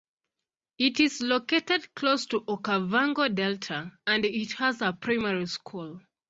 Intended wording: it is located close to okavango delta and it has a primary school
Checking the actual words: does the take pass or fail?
pass